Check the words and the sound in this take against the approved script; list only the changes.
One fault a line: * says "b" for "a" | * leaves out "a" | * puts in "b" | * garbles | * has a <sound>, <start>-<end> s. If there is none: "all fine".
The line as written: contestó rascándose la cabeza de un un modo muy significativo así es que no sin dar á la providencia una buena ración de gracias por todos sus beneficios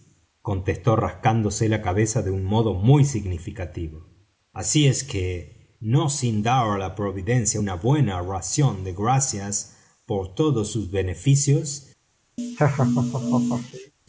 * leaves out "un"
* has a laugh, 12.4-13.9 s